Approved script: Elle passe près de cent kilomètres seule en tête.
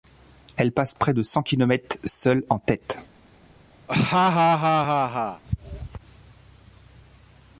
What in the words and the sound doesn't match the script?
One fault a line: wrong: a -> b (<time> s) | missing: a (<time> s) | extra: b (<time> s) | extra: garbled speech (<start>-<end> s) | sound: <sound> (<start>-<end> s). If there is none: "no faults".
sound: laugh (3.9-5.4 s)